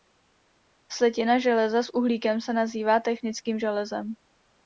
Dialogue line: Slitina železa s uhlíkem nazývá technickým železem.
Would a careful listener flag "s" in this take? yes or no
no